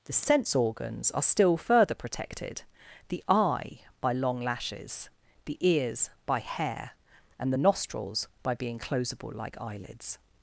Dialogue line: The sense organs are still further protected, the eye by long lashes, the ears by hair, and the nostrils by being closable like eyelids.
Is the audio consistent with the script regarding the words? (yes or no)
yes